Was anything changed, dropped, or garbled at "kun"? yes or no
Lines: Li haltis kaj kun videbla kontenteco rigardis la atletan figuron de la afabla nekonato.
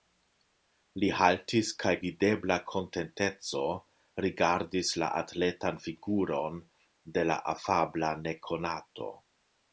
yes